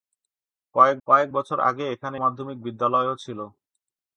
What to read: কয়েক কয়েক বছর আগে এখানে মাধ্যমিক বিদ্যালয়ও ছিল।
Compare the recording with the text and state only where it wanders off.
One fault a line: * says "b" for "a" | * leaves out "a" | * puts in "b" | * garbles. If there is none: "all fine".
all fine